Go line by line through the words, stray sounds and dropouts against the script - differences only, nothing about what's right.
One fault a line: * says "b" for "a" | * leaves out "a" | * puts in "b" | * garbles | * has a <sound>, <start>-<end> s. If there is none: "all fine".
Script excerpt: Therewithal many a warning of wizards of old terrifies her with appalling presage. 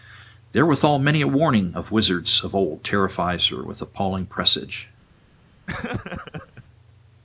* has a laugh, 5.7-6.6 s